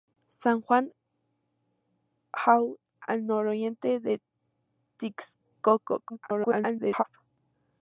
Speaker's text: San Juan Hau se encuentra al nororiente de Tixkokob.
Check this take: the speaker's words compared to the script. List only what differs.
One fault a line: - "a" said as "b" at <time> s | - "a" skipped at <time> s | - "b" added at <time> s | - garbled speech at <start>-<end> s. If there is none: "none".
- "se encuentra" skipped at 2.8 s
- garbled speech at 6.1-7.0 s